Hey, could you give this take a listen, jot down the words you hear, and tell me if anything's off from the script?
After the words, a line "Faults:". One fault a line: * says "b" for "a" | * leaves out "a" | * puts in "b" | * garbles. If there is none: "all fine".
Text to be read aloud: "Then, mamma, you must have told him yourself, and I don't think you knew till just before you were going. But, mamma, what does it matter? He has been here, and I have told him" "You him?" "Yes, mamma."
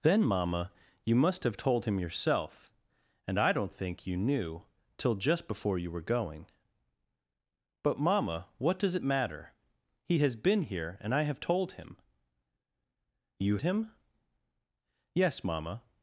"Then, mamma, you must have told him yourself, and I don't think you knew till just before you were going. But, mamma, what does it matter? He has been here, and I have told him" "You him?" "Yes, mamma."
Faults:
all fine